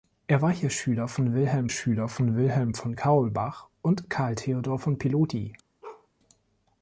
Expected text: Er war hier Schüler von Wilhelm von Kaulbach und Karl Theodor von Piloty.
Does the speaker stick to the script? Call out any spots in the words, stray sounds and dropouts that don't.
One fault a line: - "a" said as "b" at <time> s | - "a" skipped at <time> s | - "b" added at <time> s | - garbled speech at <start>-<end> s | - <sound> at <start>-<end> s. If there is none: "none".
- "Schüler von Wilhelm" added at 1.7 s
- bark at 5.8-6.1 s